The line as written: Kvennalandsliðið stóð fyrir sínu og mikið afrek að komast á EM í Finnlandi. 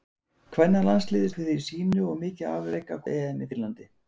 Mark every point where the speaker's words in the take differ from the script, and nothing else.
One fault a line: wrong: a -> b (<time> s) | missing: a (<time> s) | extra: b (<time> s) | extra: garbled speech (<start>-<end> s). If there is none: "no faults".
missing: stóð (1.3 s)
missing: komast (3.0 s)